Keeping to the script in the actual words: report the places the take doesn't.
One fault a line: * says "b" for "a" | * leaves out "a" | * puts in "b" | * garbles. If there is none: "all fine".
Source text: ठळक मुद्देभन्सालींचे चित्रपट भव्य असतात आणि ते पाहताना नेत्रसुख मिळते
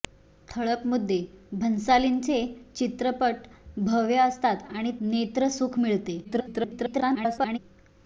* leaves out "ते पाहताना"
* garbles